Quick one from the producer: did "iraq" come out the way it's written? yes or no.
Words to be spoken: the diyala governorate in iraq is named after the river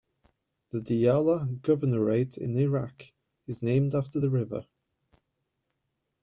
yes